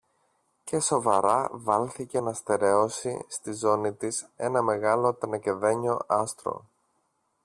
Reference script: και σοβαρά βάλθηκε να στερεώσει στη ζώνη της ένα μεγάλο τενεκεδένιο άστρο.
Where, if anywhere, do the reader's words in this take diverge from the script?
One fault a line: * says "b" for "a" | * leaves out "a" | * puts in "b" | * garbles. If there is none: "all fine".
all fine